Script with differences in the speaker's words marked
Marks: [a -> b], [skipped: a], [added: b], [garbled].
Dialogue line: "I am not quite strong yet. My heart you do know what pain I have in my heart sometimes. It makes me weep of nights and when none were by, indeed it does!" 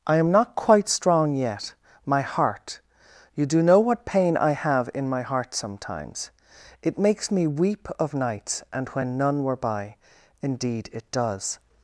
"I am not quite strong yet. My heart you do know what pain I have in my heart sometimes. It makes me weep of nights and when none were by, indeed it does!"